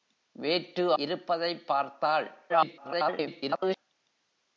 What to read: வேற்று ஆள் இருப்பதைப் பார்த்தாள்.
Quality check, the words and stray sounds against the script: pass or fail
fail